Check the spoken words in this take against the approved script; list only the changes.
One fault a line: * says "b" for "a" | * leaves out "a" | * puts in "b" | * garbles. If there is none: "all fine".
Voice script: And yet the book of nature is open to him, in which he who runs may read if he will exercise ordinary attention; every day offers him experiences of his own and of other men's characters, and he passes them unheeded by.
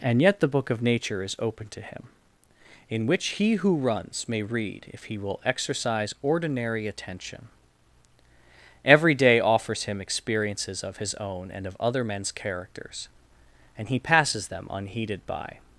all fine